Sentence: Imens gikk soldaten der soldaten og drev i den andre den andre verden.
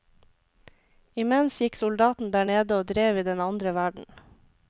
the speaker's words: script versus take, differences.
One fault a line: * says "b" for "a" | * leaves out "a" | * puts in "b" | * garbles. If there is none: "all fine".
* says "nede" for "soldaten"
* leaves out "den andre"